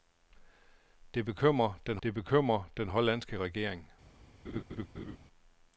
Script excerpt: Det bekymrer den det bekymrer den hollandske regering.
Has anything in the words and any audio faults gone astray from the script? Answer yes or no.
yes